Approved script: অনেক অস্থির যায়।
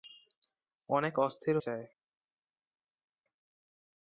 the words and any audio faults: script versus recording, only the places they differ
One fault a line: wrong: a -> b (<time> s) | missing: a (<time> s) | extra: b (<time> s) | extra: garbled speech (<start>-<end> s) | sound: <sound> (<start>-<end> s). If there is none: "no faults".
no faults